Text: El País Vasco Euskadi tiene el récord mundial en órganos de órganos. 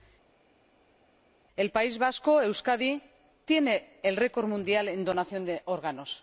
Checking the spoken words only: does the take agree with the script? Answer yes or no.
no